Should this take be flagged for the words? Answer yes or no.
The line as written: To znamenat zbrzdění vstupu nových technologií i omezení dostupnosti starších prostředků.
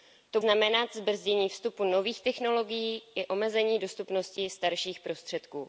no